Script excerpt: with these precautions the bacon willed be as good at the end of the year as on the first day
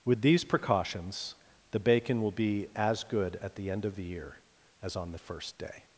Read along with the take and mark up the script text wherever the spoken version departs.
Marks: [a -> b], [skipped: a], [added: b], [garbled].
with these precautions the bacon [willed -> will] be as good at the end of the year as on the first day